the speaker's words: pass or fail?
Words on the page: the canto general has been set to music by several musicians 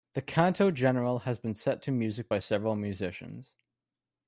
pass